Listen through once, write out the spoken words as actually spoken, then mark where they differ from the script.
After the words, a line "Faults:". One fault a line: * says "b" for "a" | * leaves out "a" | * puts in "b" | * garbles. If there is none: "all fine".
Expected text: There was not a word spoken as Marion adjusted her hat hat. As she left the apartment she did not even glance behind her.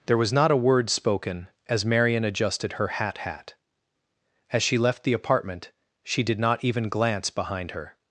There was not a word spoken as Marion adjusted her hat hat. As she left the apartment she did not even glance behind her.
Faults:
all fine